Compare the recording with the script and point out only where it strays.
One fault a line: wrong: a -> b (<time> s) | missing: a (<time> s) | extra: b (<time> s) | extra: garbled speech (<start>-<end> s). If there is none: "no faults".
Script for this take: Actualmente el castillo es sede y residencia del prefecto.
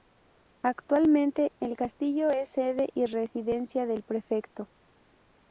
no faults